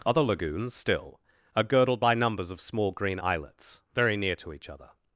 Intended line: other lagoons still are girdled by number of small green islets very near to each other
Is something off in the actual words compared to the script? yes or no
yes